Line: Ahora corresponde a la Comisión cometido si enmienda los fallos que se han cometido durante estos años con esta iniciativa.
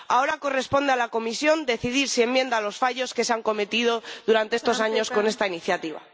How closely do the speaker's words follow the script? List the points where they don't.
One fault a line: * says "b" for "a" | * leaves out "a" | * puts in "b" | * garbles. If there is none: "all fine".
* says "decidir" for "cometido"